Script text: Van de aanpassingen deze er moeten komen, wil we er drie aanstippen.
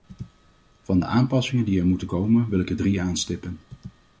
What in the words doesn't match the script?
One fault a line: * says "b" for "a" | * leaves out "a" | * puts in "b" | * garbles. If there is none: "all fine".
* says "die" for "deze"
* says "ik" for "we"